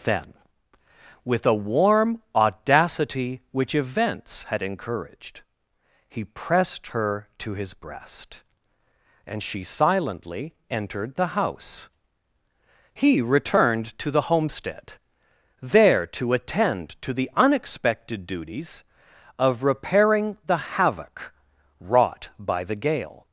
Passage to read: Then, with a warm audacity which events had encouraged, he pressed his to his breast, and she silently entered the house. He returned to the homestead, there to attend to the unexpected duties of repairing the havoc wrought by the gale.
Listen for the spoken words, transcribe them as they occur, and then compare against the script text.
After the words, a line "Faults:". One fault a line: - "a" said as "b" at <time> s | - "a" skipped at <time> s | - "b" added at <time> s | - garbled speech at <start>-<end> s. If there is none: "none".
Then, with a warm audacity which events had encouraged, he pressed her to his breast, and she silently entered the house. He returned to the homestead, there to attend to the unexpected duties of repairing the havoc wrought by the gale.
Faults:
- "his" said as "her" at 6.9 s